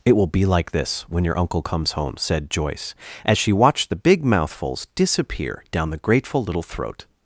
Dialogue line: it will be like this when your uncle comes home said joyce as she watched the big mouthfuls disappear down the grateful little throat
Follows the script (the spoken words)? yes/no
yes